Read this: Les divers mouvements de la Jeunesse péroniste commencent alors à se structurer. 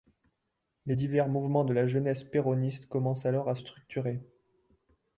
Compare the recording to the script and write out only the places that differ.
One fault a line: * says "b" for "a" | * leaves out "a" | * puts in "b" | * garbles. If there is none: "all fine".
* leaves out "se"